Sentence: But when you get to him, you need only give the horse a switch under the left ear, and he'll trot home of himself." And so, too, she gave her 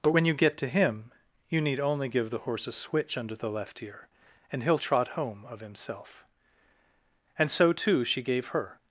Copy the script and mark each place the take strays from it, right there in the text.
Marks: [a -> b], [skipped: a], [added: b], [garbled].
But when you get to him, you need only give the horse a switch under the left ear, and he'll trot home of himself." And so, too, she gave her